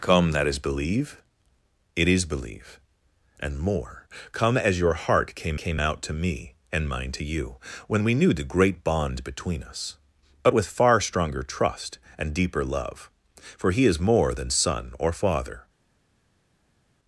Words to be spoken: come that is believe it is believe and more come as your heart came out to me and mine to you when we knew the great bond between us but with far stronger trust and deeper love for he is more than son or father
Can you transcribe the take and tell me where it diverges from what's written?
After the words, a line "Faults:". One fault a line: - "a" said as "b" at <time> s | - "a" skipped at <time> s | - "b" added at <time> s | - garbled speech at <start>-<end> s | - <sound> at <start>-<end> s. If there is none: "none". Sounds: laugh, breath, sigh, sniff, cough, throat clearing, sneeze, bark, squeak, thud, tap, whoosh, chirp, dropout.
come that is believe it is believe and more come as your heart came came out to me and mine to you when we knew the great bond between us but with far stronger trust and deeper love for he is more than son or father
Faults:
- "came" added at 5.6 s